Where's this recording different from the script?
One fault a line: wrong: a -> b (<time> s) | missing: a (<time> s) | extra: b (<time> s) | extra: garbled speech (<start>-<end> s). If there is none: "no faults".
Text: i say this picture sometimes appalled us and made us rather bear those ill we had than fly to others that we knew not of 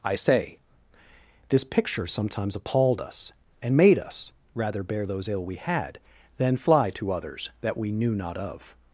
no faults